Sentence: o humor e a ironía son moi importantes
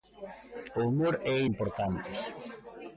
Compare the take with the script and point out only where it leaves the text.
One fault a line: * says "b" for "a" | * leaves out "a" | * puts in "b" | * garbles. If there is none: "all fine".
* leaves out "ironía son moi"